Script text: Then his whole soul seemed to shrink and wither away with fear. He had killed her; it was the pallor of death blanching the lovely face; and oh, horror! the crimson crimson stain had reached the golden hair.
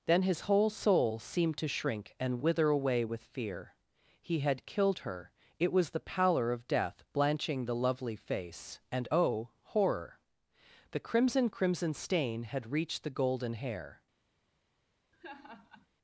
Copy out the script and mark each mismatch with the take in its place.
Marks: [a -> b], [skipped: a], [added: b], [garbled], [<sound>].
Then his whole soul seemed to shrink and wither away with fear. He had killed her; it was the pallor of death blanching the lovely face; and oh, horror! the crimson crimson stain had reached the golden hair. [laugh]